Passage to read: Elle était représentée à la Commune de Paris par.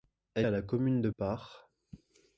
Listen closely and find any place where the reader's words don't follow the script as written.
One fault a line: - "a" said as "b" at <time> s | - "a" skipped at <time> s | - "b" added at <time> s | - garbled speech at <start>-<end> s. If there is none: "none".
- "était représentée" skipped at 0.5 s
- "Paris" skipped at 1.1 s